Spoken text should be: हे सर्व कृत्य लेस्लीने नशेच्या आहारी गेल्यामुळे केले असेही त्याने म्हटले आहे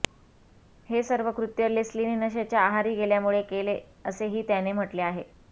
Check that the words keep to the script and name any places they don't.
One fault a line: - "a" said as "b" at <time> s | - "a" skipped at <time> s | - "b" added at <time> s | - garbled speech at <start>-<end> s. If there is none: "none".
none